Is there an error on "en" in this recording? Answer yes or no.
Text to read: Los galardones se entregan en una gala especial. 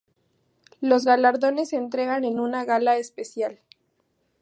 no